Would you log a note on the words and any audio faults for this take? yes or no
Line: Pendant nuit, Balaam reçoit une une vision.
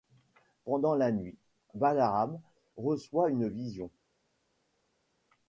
yes